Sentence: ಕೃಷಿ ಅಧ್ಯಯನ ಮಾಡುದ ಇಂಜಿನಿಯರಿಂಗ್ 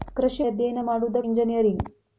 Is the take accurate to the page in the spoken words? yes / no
yes